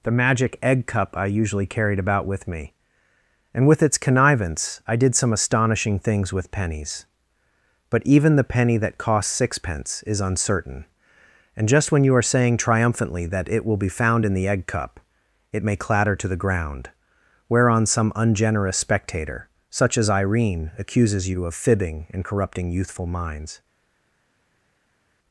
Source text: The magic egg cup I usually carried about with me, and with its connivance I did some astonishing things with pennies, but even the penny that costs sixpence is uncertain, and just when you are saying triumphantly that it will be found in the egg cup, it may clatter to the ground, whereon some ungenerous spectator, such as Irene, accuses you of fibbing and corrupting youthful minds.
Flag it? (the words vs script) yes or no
no